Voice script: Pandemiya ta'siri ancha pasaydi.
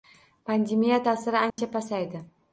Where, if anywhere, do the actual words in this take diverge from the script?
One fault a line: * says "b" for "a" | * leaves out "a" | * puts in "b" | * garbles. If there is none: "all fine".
all fine